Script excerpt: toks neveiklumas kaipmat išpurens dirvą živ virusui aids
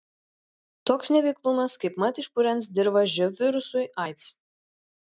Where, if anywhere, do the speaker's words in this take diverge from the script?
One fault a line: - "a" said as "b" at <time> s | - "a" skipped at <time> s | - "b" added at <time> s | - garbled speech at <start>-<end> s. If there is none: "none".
none